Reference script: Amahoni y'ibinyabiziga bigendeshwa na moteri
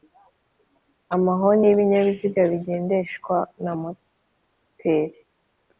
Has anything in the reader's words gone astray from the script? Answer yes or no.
no